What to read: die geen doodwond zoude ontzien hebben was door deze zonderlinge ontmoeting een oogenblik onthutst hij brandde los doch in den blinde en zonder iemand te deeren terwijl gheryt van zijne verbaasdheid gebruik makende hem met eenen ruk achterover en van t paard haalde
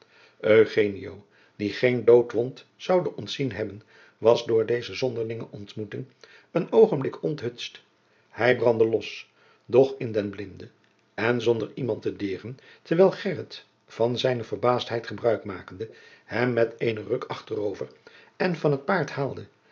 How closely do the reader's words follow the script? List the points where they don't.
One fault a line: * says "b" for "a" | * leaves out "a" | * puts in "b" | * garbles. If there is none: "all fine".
all fine